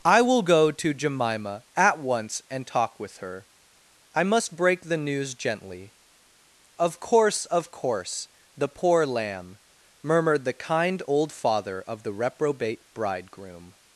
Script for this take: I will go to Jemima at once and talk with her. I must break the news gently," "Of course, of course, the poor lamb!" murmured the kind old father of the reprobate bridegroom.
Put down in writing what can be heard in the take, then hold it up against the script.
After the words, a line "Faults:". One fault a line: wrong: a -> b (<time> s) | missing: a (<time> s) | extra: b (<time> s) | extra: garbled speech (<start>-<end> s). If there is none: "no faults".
I will go to Jemima at once and talk with her. I must break the news gently," "Of course, of course, the poor lamb!" murmured the kind old father of the reprobate bridegroom.
Faults:
no faults